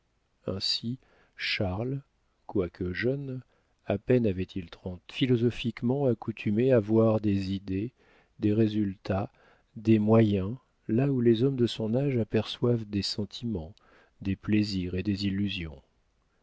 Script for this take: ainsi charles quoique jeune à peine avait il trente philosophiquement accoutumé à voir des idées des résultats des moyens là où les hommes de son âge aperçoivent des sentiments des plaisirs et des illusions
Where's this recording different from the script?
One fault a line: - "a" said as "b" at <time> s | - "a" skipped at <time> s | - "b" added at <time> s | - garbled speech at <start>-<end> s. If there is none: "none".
none